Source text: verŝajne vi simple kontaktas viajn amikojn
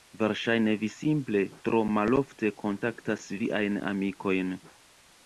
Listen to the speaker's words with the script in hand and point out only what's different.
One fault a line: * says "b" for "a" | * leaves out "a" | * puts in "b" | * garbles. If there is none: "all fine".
* puts in "tro malofte"